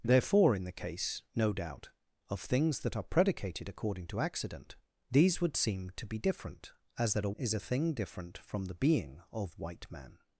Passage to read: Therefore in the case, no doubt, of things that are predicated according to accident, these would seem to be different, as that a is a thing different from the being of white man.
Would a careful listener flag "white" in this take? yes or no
no